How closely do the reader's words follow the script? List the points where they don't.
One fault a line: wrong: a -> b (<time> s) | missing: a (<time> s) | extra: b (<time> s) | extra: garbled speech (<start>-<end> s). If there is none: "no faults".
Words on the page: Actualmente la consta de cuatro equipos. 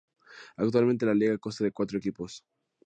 extra: liga (1.1 s)